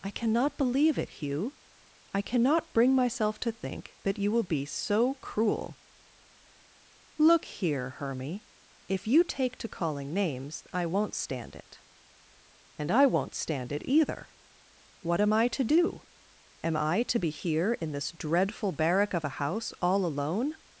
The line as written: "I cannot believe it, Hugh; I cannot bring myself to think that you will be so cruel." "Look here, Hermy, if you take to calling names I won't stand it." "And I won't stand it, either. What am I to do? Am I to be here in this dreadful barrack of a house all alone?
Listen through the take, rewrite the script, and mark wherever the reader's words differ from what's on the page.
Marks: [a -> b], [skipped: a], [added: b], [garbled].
"I cannot believe it, Hugh; I cannot bring myself to think that you will be so cruel." "Look here, Hermy, if you take to calling names I won't stand it." "And I won't stand it, either. What am I to do? Am I to be here in this dreadful barrack of a house all alone?